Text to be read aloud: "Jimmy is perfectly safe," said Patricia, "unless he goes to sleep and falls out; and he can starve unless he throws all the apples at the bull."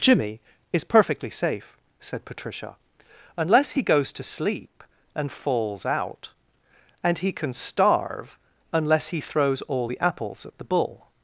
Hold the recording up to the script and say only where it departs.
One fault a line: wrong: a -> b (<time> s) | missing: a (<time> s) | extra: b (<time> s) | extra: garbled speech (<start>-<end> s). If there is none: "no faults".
no faults